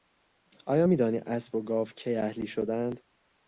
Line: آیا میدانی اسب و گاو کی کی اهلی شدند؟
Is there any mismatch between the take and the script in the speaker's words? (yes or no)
yes